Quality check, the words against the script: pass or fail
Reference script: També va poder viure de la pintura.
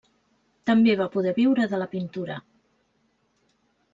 pass